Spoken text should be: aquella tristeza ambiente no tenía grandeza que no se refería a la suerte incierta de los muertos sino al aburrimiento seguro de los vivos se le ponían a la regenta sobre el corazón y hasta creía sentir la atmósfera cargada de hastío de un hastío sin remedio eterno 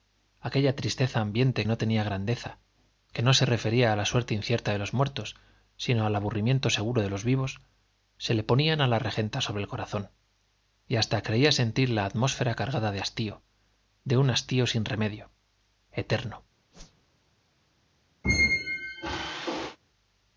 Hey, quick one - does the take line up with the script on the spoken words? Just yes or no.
yes